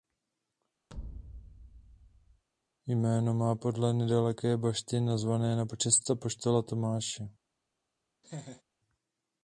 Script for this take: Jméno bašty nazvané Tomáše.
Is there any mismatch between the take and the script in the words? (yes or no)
yes